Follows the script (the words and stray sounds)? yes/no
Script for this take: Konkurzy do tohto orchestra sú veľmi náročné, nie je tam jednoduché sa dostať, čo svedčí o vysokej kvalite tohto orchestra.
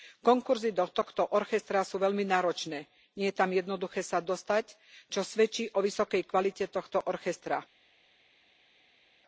yes